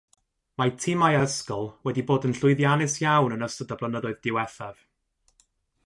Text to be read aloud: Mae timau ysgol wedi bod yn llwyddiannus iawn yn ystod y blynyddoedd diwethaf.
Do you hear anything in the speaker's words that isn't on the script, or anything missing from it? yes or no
no